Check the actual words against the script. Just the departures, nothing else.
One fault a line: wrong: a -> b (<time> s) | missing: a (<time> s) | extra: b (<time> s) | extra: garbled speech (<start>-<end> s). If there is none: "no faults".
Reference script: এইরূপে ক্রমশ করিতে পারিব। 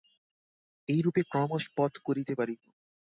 extra: পথ (1.8 s)